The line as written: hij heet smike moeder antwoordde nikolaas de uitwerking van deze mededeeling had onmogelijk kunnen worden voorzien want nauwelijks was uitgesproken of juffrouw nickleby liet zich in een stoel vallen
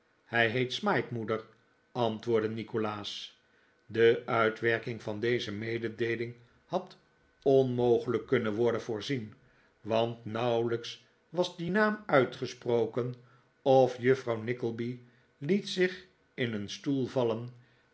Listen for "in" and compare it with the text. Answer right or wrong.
right